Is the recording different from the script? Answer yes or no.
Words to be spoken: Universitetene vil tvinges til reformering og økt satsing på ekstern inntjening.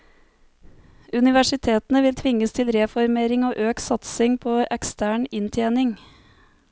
no